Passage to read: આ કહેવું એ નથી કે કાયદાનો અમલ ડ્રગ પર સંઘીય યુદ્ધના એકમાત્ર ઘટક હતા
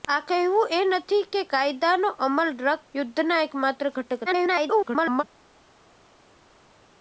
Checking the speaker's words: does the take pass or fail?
fail